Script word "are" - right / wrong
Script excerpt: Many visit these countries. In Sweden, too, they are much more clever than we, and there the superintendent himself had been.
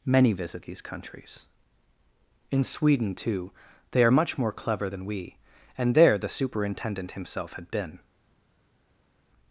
right